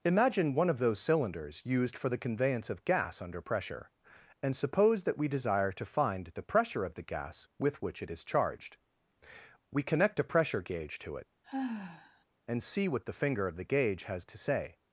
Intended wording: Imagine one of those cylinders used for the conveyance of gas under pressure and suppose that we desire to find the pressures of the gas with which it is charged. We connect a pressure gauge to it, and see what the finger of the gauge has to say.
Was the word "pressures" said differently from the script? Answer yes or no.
yes